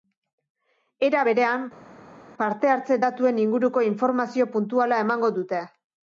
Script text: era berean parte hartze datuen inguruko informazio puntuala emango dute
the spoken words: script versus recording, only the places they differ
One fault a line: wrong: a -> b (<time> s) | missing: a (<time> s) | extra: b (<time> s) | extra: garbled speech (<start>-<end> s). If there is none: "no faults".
no faults